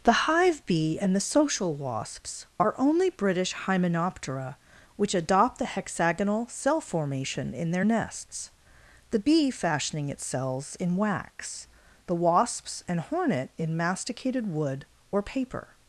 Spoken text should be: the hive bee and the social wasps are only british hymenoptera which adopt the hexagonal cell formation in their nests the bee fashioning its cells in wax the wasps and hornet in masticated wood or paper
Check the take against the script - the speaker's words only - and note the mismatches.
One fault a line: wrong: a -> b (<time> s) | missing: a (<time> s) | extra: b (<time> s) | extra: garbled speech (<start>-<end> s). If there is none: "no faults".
no faults